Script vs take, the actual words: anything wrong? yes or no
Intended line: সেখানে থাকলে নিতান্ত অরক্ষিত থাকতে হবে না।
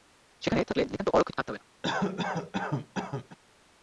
no